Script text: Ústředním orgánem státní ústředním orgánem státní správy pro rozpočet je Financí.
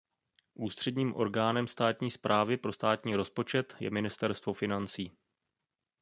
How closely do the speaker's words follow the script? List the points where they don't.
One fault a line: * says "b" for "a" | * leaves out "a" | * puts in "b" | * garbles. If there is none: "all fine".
* says "správy pro" for "ústředním orgánem"
* leaves out "správy pro"
* puts in "Ministerstvo"